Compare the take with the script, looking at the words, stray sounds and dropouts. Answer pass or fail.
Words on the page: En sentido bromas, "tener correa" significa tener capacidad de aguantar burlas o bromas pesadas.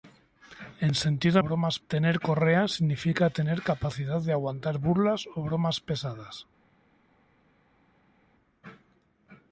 pass